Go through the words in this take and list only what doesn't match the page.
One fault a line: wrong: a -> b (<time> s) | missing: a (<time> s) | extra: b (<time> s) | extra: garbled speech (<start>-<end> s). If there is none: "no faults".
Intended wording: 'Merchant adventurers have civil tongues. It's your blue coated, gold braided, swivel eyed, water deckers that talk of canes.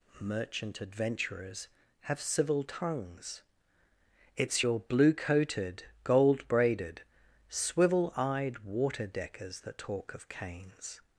no faults